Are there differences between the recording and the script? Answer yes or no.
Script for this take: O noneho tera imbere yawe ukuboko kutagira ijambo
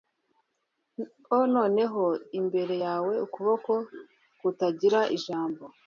yes